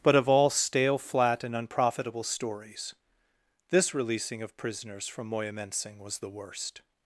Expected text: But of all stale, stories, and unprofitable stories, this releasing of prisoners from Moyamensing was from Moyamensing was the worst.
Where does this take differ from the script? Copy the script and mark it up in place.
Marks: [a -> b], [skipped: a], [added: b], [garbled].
But of all stale, [stories, -> flat] and unprofitable stories, this releasing of prisoners from Moyamensing was [skipped: from Moyamensing was] the worst.